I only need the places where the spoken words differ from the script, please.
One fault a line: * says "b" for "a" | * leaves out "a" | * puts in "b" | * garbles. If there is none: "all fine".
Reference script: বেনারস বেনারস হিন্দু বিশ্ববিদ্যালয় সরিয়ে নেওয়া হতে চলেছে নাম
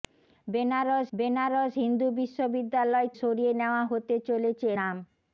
all fine